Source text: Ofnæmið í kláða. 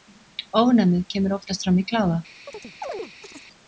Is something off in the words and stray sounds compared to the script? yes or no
yes